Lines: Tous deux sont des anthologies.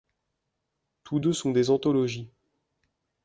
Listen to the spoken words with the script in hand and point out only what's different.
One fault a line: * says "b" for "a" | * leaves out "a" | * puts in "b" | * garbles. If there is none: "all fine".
all fine